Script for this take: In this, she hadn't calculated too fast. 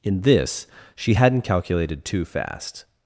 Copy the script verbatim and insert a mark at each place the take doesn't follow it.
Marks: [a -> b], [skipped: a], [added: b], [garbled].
In this, she hadn't calculated too fast.